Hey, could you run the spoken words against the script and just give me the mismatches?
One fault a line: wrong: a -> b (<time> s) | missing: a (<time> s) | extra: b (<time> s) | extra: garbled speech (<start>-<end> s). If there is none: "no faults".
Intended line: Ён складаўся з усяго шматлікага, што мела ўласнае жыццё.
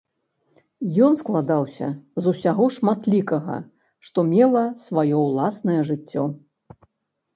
extra: сваё (4.8 s)